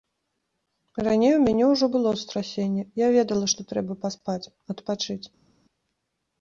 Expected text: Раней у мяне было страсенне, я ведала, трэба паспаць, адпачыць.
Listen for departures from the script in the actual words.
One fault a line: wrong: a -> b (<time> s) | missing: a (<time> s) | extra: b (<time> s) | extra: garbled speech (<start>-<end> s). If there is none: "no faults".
extra: ўжо (1.7 s)
extra: што (3.5 s)